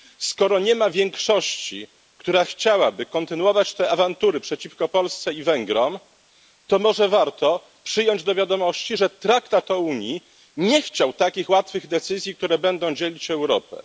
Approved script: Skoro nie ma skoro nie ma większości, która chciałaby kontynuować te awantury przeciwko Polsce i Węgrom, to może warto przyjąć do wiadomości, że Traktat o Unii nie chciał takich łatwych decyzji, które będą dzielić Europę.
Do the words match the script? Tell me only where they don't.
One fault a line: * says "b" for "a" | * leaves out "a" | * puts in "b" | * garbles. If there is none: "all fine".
* leaves out "skoro nie ma"